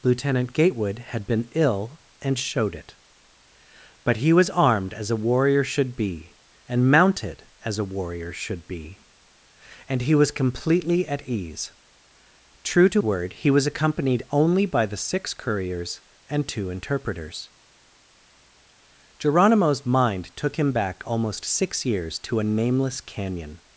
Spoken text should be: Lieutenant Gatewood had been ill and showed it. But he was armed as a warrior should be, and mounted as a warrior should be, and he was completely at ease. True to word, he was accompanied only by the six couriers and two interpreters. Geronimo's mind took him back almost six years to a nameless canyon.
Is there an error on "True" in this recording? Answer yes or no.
no